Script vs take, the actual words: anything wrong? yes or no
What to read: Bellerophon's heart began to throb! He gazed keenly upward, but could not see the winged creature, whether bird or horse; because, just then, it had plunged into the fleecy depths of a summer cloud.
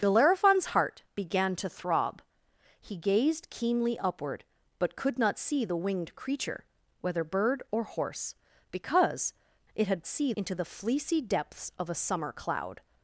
yes